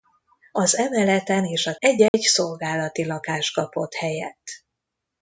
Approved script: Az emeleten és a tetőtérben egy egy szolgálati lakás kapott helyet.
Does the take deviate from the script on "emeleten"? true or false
false